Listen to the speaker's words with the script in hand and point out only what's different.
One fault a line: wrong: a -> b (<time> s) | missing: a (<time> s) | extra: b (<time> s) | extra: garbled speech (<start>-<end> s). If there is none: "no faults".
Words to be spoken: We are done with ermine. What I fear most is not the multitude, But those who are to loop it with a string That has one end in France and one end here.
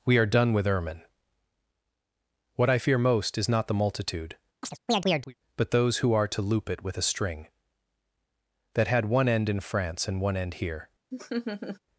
wrong: has -> had (8.9 s)